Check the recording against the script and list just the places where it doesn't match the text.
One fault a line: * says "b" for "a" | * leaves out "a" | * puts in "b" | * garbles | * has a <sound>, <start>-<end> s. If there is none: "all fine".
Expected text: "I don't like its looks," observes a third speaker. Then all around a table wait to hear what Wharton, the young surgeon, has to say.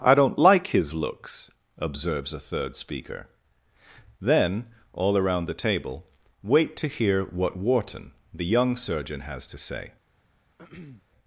* says "his" for "its"
* says "the" for "a"
* has a throat clearing, 10.6-11.0 s